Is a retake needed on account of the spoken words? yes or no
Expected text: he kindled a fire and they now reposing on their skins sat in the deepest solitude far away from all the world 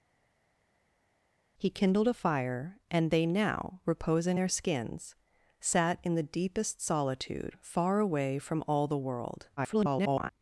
yes